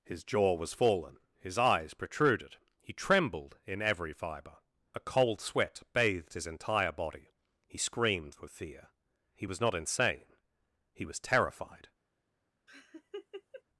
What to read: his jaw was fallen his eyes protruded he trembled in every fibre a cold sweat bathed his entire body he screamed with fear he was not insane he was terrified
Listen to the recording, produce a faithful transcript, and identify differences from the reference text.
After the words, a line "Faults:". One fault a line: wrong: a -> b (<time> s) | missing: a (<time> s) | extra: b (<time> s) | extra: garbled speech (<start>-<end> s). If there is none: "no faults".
his jaw was fallen his eyes protruded he trembled in every fibre a cold sweat bathed his entire body he screamed with fear he was not insane he was terrified
Faults:
no faults